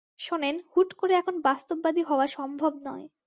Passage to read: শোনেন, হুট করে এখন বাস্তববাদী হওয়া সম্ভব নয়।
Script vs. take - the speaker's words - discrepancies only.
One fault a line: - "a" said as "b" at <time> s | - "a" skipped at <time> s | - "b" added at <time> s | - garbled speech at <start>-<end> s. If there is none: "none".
none